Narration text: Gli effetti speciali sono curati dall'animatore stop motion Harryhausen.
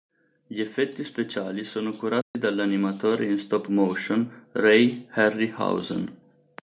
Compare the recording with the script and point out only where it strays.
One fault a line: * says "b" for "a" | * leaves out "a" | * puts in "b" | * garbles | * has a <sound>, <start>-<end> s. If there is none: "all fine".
* has a dropout, 2.2-2.3 s
* puts in "in"
* puts in "Ray"